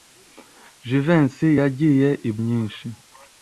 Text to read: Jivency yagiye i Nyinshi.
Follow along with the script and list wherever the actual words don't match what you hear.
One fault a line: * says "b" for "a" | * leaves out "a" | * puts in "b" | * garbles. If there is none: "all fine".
all fine